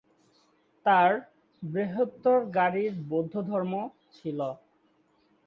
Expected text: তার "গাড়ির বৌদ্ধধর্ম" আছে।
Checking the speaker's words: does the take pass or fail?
fail